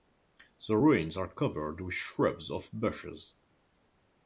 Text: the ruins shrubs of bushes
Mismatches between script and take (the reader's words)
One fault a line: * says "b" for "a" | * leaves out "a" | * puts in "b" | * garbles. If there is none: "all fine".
* puts in "are covered with"